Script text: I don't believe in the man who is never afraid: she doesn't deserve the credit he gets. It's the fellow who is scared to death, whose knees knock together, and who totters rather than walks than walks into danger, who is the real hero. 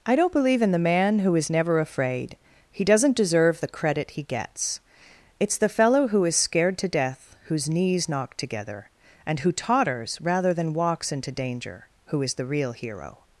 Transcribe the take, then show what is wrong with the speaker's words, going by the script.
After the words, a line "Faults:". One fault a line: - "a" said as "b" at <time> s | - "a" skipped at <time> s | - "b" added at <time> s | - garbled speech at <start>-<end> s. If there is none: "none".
I don't believe in the man who is never afraid: he doesn't deserve the credit he gets. It's the fellow who is scared to death, whose knees knock together, and who totters rather than walks into danger, who is the real hero.
Faults:
- "she" said as "he" at 2.7 s
- "than walks" skipped at 11.1 s